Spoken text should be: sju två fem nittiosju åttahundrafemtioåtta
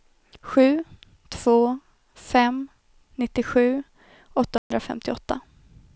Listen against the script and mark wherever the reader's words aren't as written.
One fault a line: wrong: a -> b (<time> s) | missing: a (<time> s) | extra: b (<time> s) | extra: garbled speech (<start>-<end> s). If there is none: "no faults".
no faults